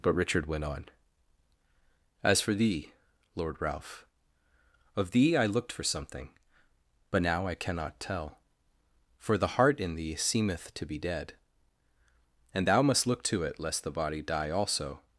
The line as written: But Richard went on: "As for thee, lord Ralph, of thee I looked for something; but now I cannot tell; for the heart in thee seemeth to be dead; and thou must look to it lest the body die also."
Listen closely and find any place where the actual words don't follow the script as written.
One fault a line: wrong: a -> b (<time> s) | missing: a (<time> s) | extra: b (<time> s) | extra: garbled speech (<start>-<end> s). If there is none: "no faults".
no faults